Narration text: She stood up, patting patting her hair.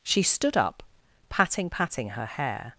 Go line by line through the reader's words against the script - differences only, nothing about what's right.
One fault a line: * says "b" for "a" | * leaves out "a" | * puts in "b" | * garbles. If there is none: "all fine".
all fine